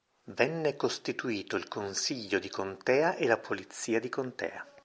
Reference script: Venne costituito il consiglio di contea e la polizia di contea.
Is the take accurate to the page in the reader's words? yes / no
yes